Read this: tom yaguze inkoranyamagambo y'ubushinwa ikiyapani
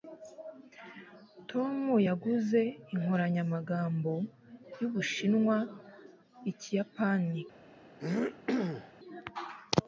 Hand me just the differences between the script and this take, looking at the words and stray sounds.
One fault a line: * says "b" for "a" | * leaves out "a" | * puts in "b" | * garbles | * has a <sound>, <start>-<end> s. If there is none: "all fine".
* has a throat clearing, 8.0-8.9 s